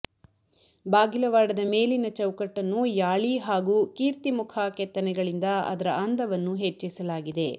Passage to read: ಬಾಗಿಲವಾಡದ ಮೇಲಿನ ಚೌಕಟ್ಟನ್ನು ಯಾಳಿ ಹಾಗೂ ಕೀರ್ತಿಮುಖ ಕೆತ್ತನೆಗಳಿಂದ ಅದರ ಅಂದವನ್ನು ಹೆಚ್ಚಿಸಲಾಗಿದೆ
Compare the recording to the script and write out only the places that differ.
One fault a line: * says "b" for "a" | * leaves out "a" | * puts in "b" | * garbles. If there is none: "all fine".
all fine